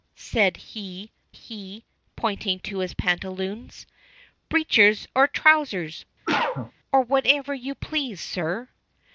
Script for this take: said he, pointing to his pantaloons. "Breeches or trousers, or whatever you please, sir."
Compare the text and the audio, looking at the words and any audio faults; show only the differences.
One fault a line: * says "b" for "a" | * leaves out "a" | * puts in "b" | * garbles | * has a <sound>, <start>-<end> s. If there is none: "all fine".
* puts in "he"
* has a cough, 6.2-6.7 s